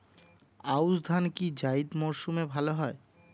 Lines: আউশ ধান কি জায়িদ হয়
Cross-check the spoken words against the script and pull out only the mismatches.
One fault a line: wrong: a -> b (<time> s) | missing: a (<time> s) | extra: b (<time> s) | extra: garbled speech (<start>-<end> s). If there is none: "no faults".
extra: মরসুমে ভালো (2.0 s)